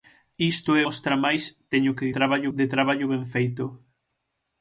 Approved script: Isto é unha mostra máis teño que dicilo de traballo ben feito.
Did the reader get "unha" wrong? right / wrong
wrong